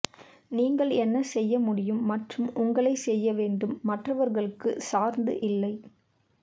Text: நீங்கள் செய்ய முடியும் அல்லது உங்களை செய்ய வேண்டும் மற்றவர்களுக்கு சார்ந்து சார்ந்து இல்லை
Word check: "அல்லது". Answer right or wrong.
wrong